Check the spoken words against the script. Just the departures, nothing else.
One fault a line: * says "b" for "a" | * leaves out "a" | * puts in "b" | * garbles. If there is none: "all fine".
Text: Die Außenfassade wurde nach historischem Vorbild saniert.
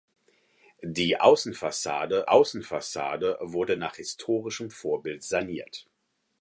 * puts in "Außenfassade"